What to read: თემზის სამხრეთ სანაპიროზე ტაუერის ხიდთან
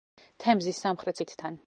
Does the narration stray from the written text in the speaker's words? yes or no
yes